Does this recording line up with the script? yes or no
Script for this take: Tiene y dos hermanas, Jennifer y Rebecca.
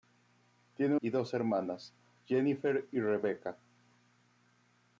yes